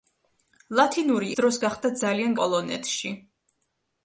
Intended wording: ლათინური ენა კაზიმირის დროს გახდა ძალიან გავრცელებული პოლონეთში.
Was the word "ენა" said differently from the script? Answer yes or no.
yes